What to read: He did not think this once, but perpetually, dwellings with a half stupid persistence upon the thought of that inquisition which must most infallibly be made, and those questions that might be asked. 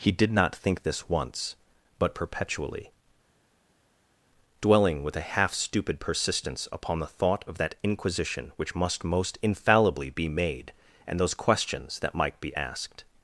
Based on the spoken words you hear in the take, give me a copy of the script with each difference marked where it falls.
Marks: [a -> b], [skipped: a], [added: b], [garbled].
He did not think this once, but perpetually, [dwellings -> dwelling] with a half stupid persistence upon the thought of that inquisition which must most infallibly be made, and those questions that might be asked.